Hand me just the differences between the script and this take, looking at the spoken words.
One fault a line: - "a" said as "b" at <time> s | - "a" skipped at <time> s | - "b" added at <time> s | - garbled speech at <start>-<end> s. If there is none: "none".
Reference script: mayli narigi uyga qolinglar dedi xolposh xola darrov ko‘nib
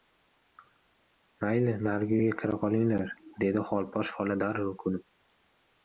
- "kira" added at 2.4 s